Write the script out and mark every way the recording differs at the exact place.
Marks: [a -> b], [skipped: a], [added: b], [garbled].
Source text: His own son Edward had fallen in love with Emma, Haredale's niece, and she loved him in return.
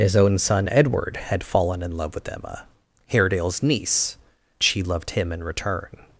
His own son Edward had fallen in love with Emma, Haredale's niece, [skipped: and] she loved him in return.